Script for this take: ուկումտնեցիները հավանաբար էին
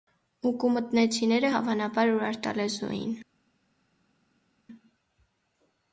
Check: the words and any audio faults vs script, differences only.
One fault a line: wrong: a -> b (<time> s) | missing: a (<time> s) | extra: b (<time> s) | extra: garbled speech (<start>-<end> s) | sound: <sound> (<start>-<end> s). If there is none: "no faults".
extra: ուրարտալեզու (2.2 s)